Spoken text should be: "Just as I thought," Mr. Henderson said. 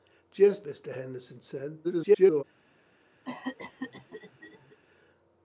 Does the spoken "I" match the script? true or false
false